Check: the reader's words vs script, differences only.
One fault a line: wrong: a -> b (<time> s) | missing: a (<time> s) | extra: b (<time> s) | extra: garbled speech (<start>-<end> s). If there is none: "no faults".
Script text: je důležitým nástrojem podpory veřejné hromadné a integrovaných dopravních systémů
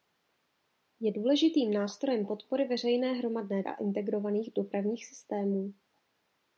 no faults